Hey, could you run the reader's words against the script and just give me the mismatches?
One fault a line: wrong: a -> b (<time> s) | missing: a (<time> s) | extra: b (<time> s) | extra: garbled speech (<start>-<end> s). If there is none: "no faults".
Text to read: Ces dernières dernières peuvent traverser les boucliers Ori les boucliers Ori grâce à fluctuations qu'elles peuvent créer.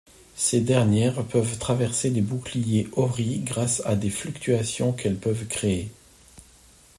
missing: dernières (1.2 s)
missing: les boucliers Ori (3.4 s)
extra: des (4.0 s)